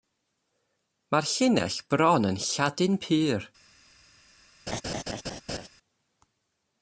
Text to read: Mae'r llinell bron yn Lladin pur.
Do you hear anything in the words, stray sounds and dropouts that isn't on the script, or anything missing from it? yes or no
yes